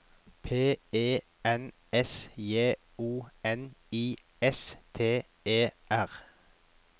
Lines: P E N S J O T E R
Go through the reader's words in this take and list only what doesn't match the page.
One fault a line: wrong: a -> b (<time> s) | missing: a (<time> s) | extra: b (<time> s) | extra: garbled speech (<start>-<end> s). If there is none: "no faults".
extra: N I S (3.4 s)